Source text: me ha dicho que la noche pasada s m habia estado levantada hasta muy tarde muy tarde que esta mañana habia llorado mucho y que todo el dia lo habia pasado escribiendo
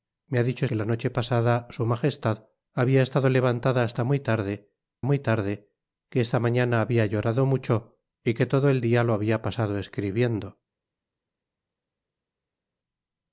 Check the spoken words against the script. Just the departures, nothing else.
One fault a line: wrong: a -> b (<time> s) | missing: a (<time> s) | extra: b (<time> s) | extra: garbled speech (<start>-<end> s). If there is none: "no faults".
no faults